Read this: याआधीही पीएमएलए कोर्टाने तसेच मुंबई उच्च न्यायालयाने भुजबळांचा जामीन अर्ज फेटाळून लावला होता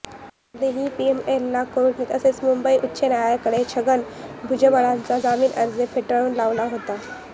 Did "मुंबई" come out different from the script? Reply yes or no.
no